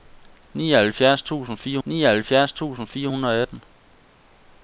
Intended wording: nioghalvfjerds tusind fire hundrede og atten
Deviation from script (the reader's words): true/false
true